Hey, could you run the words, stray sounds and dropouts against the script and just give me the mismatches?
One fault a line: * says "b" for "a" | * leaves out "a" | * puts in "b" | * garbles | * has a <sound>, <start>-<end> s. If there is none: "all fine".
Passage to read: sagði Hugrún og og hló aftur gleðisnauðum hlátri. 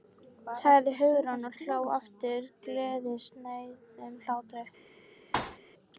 * has a thud, 5.3-5.6 s